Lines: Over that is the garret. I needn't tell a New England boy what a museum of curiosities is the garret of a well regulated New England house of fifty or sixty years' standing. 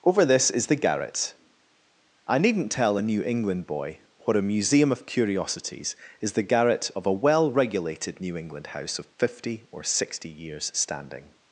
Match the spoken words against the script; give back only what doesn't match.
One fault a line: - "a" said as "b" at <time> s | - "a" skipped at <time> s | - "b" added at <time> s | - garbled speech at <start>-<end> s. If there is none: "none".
- "that" said as "this" at 0.2 s